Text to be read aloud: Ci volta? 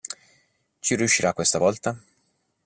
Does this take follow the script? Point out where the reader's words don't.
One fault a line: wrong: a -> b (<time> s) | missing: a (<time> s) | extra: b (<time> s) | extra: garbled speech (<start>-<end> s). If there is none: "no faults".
extra: riuscirà questa (0.9 s)